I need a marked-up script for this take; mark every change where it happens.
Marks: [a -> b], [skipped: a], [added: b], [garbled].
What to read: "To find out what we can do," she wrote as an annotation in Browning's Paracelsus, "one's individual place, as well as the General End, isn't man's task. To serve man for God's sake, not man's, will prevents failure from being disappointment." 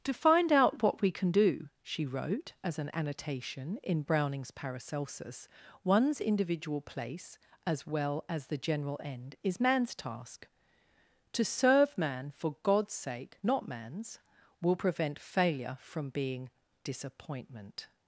"To find out what we can do," she wrote as an annotation in Browning's Paracelsus, "one's individual place, as well as the General End, [isn't -> is] man's task. To serve man for God's sake, not man's, will [prevents -> prevent] failure from being disappointment."